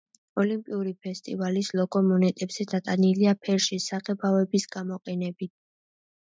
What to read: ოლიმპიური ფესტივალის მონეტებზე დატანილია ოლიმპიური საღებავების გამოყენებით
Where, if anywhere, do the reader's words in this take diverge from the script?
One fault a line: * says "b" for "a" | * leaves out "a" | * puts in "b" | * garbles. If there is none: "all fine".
* puts in "ლოგო"
* says "ფერში" for "ოლიმპიური"